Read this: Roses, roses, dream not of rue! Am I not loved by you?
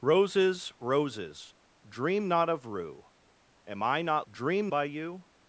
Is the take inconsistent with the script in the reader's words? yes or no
yes